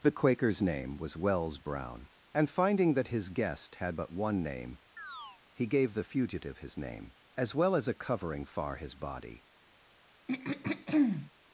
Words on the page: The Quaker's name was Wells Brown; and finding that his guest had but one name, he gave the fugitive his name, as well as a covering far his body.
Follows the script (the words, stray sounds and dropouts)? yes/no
no